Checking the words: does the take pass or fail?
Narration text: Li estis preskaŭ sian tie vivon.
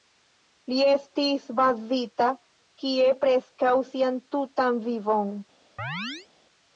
fail